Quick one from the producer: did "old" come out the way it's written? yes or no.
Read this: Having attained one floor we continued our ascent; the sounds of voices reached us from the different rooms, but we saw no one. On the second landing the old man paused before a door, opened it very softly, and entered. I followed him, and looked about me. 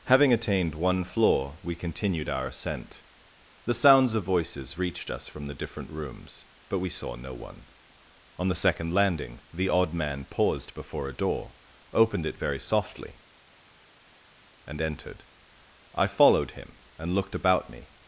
no